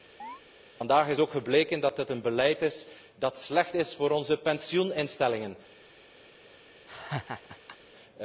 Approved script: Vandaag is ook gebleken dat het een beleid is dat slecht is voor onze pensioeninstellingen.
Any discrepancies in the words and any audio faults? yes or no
yes